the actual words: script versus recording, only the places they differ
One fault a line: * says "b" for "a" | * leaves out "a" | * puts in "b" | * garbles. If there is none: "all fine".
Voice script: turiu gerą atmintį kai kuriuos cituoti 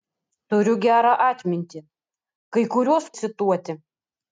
all fine